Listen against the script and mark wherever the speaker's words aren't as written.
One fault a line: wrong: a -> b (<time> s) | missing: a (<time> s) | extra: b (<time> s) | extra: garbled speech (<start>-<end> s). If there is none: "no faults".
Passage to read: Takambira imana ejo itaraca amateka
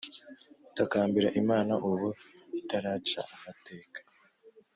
wrong: ejo -> ubu (1.9 s)